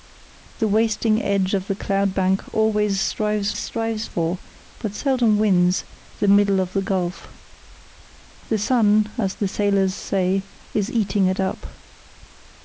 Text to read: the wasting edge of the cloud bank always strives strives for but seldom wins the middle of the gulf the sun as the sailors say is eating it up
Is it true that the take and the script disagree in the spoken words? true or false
false